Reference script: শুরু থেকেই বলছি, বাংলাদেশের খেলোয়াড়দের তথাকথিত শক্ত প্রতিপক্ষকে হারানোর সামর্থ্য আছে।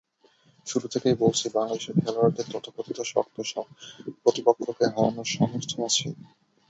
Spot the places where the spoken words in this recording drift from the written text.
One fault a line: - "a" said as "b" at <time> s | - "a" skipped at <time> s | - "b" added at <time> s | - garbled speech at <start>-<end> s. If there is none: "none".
none